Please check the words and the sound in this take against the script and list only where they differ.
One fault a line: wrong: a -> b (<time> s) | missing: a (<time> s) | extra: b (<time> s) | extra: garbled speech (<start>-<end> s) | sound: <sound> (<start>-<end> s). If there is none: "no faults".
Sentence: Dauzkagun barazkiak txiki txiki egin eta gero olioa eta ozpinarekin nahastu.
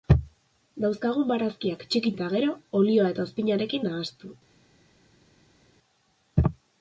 missing: txiki egin (2.1 s)